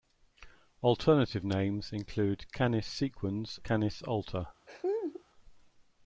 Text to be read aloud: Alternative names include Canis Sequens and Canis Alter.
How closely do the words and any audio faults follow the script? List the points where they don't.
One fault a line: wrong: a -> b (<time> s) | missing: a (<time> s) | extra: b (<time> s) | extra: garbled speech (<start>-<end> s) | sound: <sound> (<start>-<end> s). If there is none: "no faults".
missing: and (3.6 s)
sound: laugh (4.7-5.2 s)